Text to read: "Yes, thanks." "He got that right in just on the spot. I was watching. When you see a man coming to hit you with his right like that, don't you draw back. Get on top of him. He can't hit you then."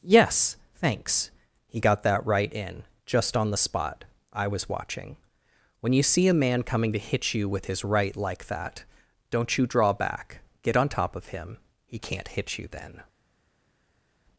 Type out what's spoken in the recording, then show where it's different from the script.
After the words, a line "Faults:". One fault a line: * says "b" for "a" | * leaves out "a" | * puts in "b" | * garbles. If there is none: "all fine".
"Yes, thanks." "He got that right in just on the spot. I was watching. When you see a man coming to hit you with his right like that, don't you draw back. Get on top of him. He can't hit you then."
Faults:
all fine